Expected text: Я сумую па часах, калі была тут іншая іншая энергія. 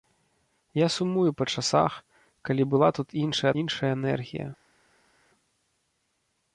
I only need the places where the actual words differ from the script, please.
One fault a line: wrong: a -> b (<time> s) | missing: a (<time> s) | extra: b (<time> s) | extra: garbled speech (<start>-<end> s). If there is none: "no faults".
no faults